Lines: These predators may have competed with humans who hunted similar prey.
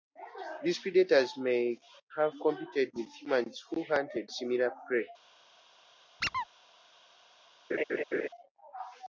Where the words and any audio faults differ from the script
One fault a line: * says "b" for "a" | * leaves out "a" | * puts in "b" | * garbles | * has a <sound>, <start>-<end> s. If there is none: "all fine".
* has a squeak, 6.2-6.5 s
* has a laugh, 7.7-8.3 s